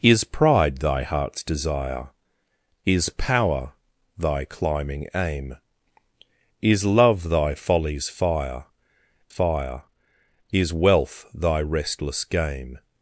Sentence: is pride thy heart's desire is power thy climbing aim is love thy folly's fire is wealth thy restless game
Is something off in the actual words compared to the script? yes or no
yes